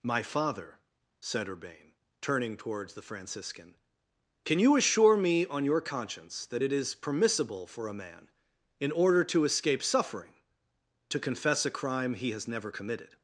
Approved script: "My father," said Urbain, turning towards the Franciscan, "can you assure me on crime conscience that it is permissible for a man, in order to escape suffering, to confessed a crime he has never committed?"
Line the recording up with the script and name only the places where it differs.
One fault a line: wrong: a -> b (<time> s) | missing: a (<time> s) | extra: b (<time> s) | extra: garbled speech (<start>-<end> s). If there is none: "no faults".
wrong: crime -> your (5.6 s)
wrong: confessed -> confess (11.2 s)